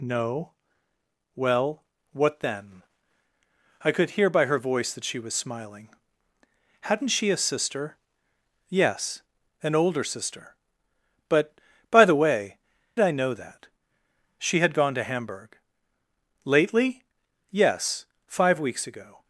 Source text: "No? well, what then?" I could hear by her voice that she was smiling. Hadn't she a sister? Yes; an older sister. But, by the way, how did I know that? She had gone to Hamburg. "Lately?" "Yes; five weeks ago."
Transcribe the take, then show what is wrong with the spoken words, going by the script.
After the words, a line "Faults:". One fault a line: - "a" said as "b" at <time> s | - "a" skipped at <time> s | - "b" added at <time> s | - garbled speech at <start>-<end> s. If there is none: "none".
"No? well, what then?" I could hear by her voice that she was smiling. Hadn't she a sister? Yes; an older sister. But, by the way, I know that? She had gone to Hamburg. "Lately?" "Yes; five weeks ago."
Faults:
- "how did" skipped at 12.6 s